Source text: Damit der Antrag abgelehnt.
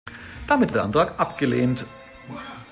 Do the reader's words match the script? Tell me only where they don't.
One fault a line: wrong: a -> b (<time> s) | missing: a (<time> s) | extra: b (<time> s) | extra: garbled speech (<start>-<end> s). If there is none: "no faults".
no faults